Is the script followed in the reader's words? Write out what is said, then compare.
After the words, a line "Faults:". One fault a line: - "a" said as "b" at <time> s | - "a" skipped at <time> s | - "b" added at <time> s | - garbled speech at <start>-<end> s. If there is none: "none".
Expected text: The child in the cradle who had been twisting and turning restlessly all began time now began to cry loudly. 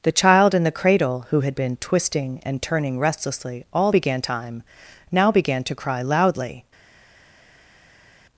The child in the cradle who had been twisting and turning restlessly all began time now began to cry loudly.
Faults:
none